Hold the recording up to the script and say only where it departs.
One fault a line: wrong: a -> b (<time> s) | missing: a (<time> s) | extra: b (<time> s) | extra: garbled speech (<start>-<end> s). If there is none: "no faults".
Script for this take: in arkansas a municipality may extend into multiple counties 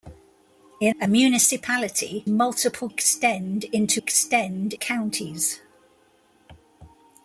missing: arkansas (0.9 s)
wrong: may -> multiple (2.3 s)
wrong: multiple -> extend (4.0 s)